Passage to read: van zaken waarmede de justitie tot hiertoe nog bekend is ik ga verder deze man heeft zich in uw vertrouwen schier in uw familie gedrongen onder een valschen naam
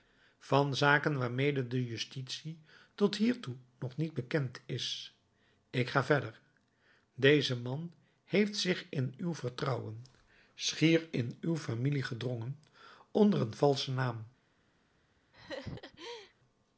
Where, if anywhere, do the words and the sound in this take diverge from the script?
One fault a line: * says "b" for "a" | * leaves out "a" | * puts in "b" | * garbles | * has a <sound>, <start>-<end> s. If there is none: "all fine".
* puts in "niet"
* has a laugh, 15.3-16.3 s